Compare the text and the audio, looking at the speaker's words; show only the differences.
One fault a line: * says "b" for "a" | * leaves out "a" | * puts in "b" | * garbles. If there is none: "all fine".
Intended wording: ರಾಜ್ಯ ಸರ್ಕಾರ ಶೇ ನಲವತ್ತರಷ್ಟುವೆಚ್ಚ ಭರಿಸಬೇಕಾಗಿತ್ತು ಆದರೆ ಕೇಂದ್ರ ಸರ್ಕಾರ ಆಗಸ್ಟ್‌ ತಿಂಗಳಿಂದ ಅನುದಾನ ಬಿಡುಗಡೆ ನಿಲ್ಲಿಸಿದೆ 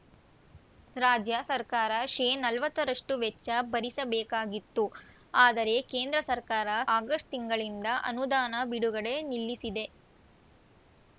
all fine